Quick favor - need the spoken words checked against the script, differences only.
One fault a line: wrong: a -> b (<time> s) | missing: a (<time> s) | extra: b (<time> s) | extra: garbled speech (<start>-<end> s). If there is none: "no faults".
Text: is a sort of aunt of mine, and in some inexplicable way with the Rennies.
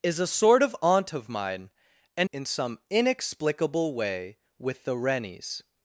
no faults